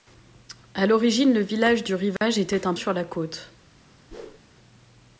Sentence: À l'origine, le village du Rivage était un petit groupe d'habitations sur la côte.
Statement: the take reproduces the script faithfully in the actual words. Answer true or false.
false